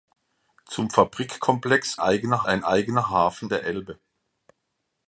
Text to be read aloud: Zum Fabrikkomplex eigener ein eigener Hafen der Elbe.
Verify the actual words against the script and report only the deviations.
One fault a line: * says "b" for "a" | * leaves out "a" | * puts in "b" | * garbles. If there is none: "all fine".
all fine